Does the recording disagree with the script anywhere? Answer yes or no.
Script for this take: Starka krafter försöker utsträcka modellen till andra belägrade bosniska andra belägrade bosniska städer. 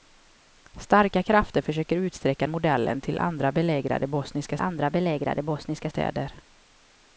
no